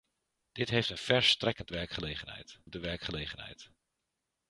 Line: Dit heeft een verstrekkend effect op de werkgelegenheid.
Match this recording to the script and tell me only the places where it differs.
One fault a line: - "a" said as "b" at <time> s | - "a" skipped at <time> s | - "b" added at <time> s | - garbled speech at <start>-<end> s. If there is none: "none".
- "effect" said as "werkgelegenheid" at 1.7 s